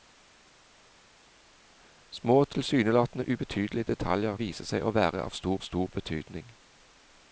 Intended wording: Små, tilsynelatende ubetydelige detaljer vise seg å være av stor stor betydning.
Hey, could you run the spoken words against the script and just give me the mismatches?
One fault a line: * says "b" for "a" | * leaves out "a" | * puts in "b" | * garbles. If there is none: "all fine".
all fine